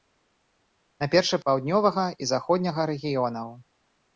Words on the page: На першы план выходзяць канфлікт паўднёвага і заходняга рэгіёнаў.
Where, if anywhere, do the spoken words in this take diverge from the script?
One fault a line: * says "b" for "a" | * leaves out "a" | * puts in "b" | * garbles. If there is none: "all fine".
* leaves out "план выходзяць канфлікт"